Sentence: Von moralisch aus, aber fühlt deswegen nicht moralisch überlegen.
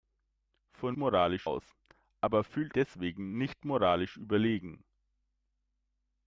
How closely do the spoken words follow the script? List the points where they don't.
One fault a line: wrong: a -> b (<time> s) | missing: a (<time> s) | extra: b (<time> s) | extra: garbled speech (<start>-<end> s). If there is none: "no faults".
no faults